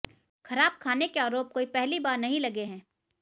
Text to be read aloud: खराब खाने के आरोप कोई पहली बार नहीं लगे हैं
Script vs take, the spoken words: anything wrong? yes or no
no